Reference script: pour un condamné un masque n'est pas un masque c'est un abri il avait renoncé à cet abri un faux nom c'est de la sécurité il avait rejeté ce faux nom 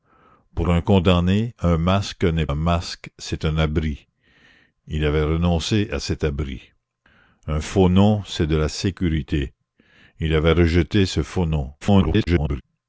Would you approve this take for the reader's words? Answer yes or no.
no